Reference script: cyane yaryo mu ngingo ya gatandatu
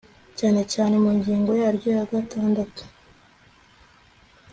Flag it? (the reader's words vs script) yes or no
yes